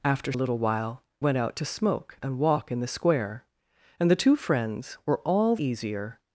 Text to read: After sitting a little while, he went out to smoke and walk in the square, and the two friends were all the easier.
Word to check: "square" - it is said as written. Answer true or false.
true